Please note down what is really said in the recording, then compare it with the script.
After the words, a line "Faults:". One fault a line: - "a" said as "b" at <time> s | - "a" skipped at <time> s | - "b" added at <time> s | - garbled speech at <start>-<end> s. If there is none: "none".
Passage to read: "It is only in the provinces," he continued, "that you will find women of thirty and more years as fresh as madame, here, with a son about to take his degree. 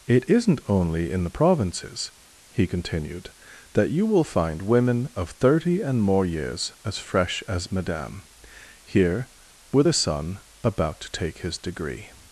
"It isn't only in the provinces," he continued, "that you will find women of thirty and more years as fresh as madame, here, with a son about to take his degree.
Faults:
- "is" said as "isn't" at 0.3 s